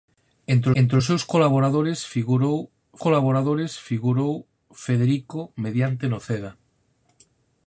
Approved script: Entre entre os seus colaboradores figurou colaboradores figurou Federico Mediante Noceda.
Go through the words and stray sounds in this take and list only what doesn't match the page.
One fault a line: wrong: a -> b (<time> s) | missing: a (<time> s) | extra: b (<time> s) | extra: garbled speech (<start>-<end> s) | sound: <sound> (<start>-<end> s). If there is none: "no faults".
no faults